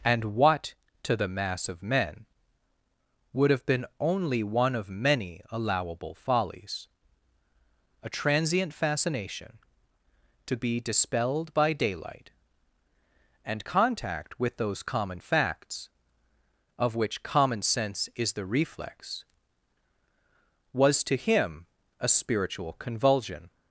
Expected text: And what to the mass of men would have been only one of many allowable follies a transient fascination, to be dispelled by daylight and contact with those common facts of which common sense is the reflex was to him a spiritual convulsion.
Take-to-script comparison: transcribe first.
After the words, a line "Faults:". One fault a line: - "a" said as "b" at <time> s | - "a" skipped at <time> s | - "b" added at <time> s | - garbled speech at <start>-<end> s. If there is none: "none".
And what to the mass of men would have been only one of many allowable follies a transient fascination, to be dispelled by daylight and contact with those common facts of which common sense is the reflex was to him a spiritual convulsion.
Faults:
none